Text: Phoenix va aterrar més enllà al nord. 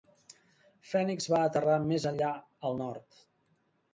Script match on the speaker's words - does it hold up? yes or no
yes